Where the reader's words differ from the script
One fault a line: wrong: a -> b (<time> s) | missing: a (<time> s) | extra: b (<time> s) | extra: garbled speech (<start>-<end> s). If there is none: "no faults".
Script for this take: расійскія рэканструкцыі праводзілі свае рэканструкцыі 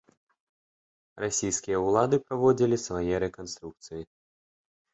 wrong: рэканструкцыі -> ўлады (1.9 s)